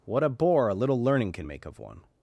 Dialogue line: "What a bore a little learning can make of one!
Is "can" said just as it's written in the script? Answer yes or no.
yes